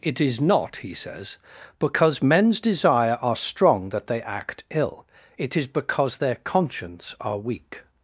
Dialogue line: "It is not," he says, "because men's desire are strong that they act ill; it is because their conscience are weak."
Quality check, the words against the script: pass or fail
pass